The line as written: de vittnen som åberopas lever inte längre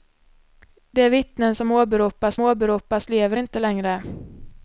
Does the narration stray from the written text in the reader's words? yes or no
yes